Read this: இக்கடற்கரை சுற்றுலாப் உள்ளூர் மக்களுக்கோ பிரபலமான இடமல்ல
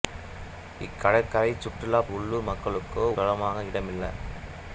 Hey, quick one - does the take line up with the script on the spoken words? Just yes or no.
yes